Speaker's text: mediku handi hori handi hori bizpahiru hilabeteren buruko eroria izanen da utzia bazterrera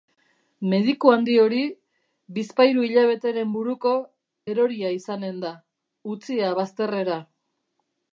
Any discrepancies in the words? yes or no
yes